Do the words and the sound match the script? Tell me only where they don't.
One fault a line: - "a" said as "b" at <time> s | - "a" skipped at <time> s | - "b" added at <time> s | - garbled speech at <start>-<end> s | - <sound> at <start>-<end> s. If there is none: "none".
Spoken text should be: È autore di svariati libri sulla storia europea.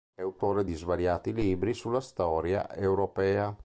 none